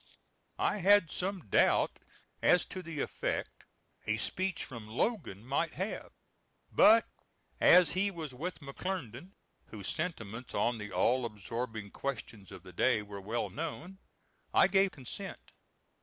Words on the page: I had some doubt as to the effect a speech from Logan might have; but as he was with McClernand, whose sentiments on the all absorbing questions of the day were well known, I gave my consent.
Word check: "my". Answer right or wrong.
wrong